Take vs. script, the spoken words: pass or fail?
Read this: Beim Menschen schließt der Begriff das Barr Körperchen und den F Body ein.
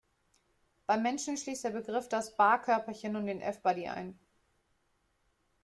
pass